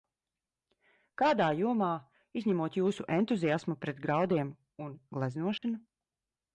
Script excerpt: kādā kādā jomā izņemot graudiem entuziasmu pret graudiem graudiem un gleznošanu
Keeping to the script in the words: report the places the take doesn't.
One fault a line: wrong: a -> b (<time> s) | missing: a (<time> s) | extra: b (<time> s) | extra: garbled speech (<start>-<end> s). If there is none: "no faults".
missing: kādā (1.5 s)
wrong: graudiem -> jūsu (2.8 s)
missing: graudiem (4.6 s)